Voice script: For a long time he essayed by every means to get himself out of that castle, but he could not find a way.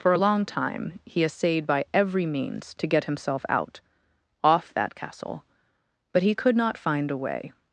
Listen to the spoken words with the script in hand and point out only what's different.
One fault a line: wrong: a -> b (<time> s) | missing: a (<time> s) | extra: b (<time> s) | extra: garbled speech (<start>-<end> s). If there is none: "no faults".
wrong: of -> off (4.4 s)